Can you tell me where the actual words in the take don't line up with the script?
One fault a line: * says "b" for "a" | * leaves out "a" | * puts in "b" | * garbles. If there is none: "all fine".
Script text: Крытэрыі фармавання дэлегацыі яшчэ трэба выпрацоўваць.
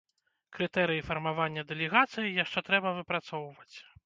all fine